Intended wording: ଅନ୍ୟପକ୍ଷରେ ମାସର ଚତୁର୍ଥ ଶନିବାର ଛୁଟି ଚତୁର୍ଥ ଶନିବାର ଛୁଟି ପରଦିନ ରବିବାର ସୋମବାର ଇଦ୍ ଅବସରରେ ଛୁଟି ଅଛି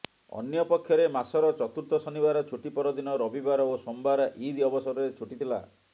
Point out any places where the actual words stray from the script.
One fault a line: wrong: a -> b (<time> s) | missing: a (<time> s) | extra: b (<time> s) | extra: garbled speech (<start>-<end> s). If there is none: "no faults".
missing: ଚତୁର୍ଥ ଶନିବାର ଛୁଟି (2.7 s)
extra: ଓ (3.7 s)
wrong: ଅଛି -> ଥିଲା (5.4 s)